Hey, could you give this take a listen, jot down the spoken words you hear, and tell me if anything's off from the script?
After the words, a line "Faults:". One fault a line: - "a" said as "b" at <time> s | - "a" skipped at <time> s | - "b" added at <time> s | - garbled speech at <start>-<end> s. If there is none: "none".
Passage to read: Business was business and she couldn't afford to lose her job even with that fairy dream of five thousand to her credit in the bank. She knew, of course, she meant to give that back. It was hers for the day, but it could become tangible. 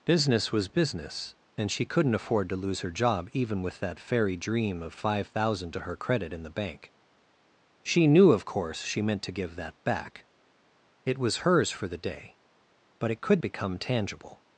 Business was business and she couldn't afford to lose her job even with that fairy dream of five thousand to her credit in the bank. She knew, of course, she meant to give that back. It was hers for the day, but it could become tangible.
Faults:
none